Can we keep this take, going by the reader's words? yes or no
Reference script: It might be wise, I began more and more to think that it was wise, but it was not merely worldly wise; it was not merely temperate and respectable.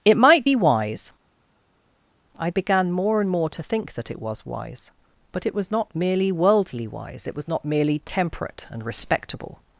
yes